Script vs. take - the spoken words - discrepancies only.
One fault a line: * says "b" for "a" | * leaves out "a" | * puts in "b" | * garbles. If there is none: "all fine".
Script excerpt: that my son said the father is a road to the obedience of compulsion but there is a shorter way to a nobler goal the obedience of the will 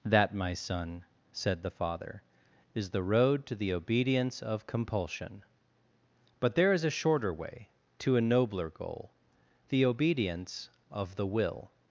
* says "the" for "a"